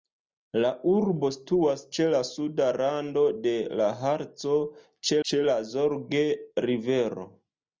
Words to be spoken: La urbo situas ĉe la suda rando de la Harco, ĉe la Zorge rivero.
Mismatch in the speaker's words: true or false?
true